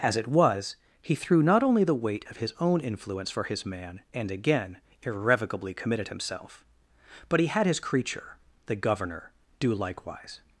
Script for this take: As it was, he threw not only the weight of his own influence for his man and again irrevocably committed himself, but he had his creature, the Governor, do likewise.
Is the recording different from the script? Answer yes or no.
no